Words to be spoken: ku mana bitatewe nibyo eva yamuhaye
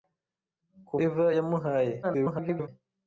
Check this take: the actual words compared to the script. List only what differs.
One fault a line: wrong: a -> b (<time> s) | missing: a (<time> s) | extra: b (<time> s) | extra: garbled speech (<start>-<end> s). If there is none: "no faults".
missing: mana bitatewe nibyo (0.9 s)
extra: garbled speech (2.0-2.7 s)